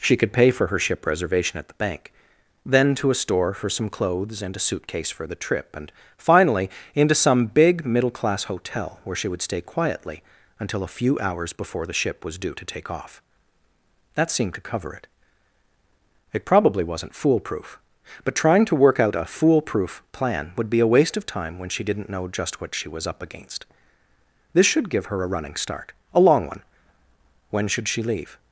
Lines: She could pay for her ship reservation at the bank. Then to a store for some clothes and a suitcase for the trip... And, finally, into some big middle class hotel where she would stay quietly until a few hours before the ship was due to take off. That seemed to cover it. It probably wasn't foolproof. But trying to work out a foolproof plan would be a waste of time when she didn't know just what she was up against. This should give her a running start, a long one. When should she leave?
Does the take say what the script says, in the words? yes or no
yes